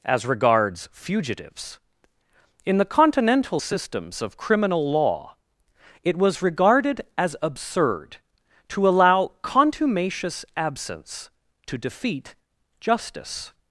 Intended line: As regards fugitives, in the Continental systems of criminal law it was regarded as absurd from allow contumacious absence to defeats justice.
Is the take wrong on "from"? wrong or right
wrong